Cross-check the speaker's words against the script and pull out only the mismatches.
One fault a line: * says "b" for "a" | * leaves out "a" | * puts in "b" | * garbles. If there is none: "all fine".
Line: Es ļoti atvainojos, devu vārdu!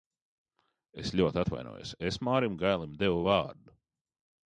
* puts in "es Mārim Gailim"